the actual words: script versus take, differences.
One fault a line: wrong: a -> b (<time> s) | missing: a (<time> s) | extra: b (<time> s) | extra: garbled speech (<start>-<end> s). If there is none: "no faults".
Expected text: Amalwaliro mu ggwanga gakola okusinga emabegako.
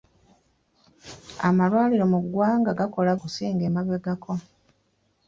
no faults